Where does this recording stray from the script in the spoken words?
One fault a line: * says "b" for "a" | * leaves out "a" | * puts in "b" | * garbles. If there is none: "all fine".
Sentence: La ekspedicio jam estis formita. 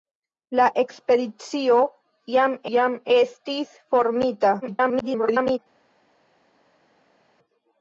* puts in "jam"
* garbles